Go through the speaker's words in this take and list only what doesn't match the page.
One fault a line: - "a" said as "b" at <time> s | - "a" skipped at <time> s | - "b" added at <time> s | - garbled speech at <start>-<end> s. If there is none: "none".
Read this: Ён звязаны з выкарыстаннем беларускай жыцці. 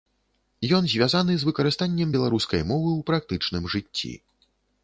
- "мовы ў практычным" added at 2.7 s